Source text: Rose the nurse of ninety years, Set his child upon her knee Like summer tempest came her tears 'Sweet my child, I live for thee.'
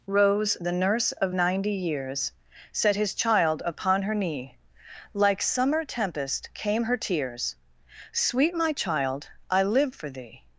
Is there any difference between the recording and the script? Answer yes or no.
no